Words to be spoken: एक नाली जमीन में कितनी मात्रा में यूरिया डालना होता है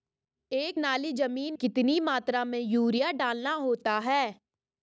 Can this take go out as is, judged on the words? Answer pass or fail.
fail